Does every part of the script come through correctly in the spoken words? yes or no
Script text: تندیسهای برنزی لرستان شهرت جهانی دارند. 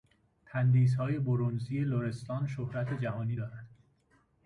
yes